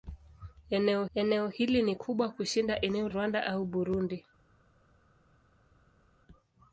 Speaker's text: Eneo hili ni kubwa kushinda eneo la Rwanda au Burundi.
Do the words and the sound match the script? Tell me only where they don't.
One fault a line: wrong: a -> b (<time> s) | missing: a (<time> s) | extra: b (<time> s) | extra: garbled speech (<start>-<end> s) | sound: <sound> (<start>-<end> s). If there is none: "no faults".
extra: eneo (1.1 s)
missing: la (3.1 s)